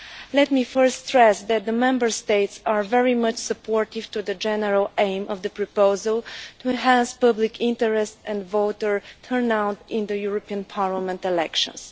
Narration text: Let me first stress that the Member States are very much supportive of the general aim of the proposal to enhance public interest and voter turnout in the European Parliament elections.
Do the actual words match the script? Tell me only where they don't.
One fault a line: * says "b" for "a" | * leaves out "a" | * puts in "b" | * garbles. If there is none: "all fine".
all fine